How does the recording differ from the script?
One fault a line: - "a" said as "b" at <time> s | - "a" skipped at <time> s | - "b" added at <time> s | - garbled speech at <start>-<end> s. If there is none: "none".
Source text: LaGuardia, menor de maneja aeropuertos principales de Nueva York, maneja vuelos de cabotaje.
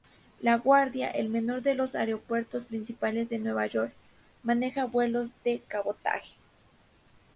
- "el" added at 1.1 s
- "maneja" said as "los" at 1.8 s